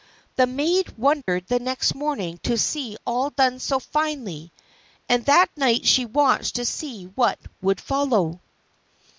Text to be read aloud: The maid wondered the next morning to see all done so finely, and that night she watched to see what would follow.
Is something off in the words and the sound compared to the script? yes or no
yes